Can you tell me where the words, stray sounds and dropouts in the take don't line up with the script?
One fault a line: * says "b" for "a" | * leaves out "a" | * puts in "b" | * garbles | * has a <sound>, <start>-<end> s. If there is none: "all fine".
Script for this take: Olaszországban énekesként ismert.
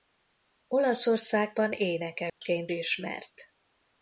* has a dropout, 2.3-2.4 s